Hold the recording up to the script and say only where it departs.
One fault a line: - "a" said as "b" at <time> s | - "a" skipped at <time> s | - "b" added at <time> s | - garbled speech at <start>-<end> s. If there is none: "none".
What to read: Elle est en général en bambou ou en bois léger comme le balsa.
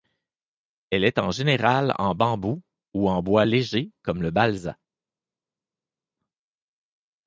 none